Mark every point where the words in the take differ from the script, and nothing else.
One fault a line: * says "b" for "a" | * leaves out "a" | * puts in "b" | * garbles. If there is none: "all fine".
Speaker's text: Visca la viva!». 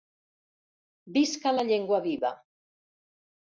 * puts in "llengua"